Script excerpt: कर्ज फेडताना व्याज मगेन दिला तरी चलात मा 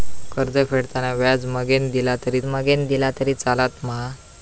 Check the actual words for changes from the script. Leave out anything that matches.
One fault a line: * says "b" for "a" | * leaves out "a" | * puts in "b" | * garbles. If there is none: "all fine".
* puts in "मगेन दिला तरी"